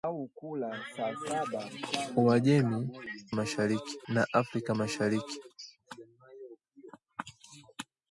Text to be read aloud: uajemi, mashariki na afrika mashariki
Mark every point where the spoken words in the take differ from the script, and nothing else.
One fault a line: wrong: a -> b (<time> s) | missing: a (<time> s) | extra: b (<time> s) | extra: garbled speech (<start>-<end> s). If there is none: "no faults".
no faults